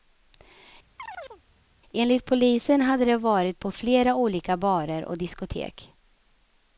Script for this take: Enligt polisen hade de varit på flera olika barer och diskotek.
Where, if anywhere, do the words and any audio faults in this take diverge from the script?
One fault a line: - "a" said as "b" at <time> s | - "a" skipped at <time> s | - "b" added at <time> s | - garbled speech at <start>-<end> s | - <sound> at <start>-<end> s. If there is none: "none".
- chirp at 1.0-1.4 s